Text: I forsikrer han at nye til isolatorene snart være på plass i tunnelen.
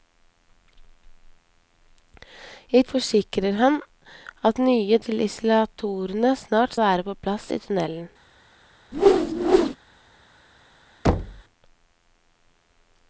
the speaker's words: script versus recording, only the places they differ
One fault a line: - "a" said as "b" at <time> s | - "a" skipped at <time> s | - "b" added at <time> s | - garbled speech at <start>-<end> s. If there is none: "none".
none